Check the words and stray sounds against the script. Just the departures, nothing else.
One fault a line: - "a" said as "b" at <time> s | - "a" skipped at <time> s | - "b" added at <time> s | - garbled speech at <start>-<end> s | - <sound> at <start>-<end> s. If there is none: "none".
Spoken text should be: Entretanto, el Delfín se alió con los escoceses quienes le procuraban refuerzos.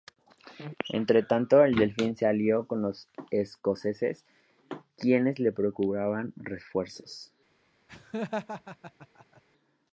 - laugh at 7.9-9.4 s